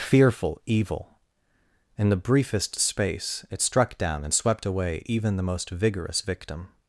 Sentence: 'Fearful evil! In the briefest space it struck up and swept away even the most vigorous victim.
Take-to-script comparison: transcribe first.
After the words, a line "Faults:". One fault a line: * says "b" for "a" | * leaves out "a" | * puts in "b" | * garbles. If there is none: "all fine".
'Fearful evil! In the briefest space it struck down and swept away even the most vigorous victim.
Faults:
* says "down" for "up"